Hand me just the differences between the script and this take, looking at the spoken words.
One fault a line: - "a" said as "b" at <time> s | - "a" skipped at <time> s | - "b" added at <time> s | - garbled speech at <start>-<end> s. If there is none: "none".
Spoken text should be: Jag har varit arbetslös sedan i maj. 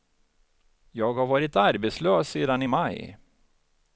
none